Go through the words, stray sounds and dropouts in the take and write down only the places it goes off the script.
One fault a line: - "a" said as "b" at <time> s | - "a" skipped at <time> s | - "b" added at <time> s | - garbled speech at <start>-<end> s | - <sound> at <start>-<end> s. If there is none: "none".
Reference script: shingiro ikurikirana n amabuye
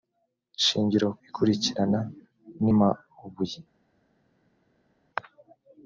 none